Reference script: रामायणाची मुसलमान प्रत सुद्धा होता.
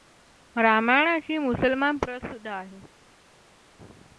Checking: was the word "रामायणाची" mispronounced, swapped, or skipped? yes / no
no